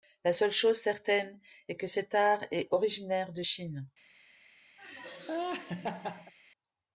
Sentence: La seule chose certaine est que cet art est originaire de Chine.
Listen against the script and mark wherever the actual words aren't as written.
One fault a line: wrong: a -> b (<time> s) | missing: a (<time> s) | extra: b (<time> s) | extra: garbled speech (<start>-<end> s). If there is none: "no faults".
no faults